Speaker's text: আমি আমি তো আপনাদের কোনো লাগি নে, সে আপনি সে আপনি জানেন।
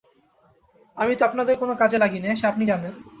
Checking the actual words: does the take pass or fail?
fail